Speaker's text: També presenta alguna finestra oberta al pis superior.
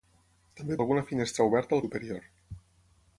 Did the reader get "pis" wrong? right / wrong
wrong